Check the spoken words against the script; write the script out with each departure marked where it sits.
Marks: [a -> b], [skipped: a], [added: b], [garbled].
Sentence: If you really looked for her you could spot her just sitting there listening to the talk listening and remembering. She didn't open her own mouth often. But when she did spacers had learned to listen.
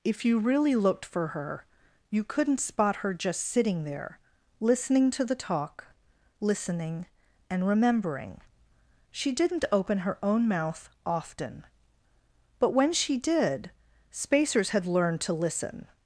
If you really looked for her you [could -> couldn't] spot her just sitting there listening to the talk listening and remembering. She didn't open her own mouth often. But when she did spacers had learned to listen.